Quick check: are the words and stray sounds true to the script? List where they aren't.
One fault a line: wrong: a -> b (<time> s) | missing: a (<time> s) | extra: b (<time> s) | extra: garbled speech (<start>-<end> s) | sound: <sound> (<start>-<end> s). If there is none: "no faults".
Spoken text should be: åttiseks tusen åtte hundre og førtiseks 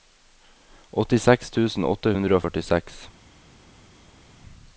no faults